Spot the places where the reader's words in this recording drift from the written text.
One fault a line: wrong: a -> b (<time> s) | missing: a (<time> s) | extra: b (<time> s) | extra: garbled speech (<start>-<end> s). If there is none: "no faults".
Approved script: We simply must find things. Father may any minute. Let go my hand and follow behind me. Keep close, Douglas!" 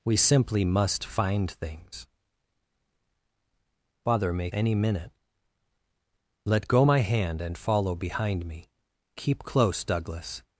no faults